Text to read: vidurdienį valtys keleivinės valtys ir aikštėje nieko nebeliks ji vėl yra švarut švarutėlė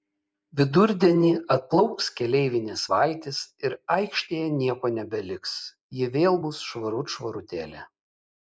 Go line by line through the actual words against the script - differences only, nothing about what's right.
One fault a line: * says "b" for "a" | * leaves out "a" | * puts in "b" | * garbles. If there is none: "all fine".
* says "atplauks" for "valtys"
* says "bus" for "yra"